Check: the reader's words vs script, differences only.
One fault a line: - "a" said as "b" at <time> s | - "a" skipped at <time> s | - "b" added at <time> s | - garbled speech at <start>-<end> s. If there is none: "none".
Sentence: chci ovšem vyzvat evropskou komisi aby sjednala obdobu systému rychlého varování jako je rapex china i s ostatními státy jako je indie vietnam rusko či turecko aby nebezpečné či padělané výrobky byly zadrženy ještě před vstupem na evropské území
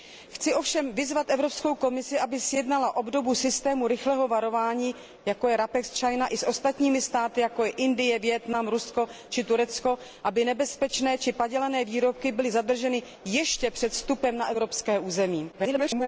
- garbled speech at 15.5-16.1 s